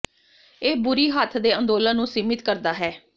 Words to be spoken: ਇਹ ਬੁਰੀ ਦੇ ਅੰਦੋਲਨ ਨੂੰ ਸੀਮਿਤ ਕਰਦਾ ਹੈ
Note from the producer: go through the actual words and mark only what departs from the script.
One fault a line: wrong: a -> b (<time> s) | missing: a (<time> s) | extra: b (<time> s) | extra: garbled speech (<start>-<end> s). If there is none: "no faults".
extra: ਹੱਥ (1.1 s)